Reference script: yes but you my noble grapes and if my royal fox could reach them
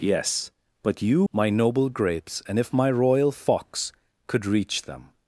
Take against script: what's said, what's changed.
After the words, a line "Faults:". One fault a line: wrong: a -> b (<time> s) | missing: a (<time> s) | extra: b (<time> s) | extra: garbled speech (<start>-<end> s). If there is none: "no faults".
yes but you my noble grapes and if my royal fox could reach them
Faults:
no faults